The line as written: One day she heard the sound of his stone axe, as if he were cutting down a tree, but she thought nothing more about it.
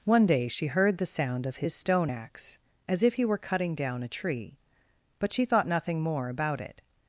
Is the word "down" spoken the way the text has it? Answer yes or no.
yes